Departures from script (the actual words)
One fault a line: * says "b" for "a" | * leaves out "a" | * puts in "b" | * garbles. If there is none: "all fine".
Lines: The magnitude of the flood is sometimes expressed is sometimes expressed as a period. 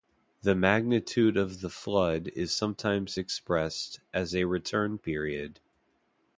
* leaves out "is sometimes expressed"
* puts in "return"